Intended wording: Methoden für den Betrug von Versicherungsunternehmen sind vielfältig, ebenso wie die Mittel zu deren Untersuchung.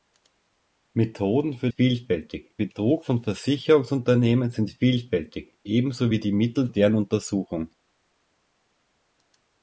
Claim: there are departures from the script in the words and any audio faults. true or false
true